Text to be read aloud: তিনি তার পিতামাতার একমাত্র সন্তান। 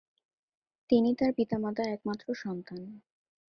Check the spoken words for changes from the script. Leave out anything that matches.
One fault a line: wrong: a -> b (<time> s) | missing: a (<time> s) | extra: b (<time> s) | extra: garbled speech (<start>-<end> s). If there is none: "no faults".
no faults